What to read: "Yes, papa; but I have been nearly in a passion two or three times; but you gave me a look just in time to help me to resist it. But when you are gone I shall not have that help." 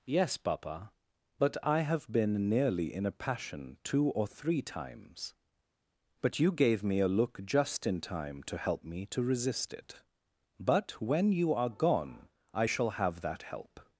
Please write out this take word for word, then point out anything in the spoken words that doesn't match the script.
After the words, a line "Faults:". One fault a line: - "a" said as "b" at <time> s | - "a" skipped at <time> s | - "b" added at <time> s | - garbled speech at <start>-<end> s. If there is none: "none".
"Yes, papa; but I have been nearly in a passion two or three times; but you gave me a look just in time to help me to resist it. But when you are gone I shall have that help."
Faults:
- "not" skipped at 12.9 s